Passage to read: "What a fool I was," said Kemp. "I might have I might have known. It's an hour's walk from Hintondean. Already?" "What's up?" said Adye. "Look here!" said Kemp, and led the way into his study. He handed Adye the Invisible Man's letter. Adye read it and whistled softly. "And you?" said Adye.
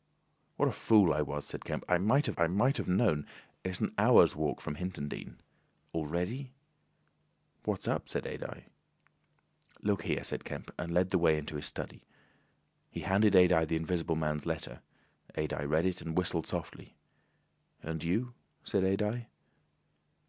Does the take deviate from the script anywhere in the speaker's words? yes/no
no